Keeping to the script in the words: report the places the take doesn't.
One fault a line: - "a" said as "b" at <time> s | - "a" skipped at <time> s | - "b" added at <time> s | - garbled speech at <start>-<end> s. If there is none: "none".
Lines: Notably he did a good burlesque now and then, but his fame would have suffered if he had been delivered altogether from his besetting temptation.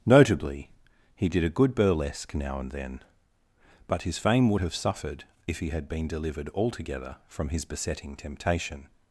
none